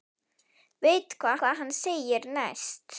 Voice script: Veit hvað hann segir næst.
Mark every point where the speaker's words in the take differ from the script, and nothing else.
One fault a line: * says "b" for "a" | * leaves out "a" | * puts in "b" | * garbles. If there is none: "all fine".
* puts in "hvað"